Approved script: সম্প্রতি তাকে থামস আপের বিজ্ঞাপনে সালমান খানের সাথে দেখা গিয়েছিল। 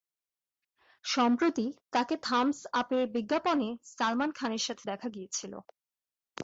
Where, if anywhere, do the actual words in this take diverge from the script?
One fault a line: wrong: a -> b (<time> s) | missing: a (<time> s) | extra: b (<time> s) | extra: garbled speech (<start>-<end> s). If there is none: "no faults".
no faults